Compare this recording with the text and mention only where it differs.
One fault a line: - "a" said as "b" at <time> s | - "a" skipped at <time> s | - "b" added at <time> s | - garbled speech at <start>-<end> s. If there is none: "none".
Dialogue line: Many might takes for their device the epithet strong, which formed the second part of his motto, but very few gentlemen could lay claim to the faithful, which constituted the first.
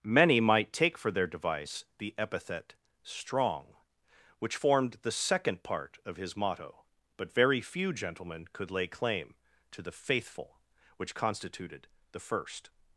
- "takes" said as "take" at 0.7 s